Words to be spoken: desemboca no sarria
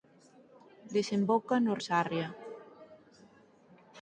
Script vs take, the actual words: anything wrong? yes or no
no